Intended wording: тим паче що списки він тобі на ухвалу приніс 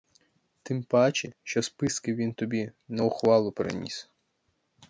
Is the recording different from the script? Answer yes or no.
no